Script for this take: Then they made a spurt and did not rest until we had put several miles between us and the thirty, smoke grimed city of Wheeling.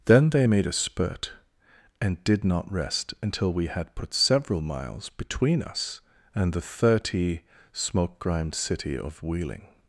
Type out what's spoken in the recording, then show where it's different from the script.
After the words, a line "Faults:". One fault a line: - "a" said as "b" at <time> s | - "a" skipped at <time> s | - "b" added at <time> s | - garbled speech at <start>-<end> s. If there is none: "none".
Then they made a spurt and did not rest until we had put several miles between us and the thirty, smoke grimed city of Wheeling.
Faults:
none